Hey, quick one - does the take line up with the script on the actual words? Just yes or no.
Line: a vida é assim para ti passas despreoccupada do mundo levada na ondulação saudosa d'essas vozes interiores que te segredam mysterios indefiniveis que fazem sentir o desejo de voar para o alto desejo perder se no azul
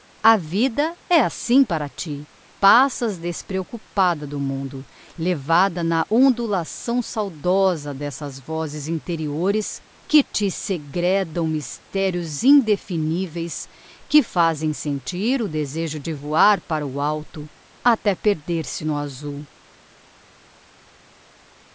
no